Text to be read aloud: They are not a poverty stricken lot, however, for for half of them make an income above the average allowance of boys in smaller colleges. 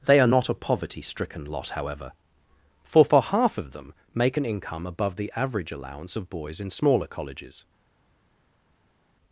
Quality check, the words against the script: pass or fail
pass